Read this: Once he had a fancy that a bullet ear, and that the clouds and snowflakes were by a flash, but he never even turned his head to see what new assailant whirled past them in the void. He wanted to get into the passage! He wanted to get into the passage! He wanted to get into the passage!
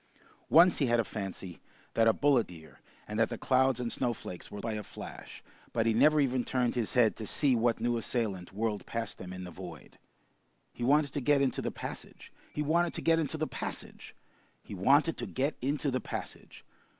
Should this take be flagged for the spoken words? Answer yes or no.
no